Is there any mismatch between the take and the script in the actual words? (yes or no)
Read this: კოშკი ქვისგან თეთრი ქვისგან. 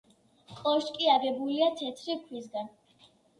yes